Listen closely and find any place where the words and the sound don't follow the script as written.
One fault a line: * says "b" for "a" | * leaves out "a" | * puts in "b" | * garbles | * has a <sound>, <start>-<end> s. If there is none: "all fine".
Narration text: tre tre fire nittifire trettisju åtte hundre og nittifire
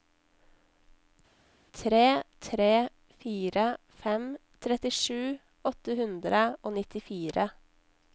* says "fem" for "nittifire"